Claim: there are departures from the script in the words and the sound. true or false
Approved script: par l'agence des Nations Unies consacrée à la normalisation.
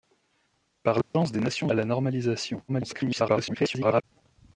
true